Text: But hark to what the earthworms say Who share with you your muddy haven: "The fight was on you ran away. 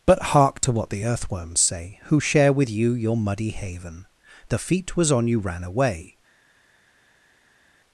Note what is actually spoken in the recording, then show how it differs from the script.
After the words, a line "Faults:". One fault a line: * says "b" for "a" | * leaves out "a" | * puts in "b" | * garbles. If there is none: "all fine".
But hark to what the earthworms say Who share with you your muddy haven: "The feet was on you ran away.
Faults:
* says "feet" for "fight"